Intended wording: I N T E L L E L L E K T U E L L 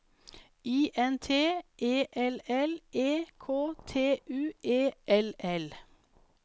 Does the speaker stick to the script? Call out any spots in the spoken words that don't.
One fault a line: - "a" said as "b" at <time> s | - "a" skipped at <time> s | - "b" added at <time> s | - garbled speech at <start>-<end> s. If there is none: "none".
- "L L E" skipped at 3.2 s